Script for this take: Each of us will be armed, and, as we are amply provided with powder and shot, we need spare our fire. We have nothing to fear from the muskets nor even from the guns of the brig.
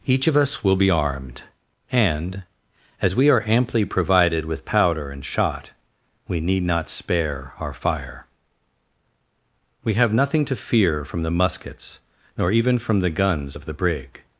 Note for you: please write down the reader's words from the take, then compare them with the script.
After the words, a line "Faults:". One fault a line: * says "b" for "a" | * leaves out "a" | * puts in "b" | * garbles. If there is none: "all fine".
Each of us will be armed, and, as we are amply provided with powder and shot, we need not spare our fire. We have nothing to fear from the muskets nor even from the guns of the brig.
Faults:
* puts in "not"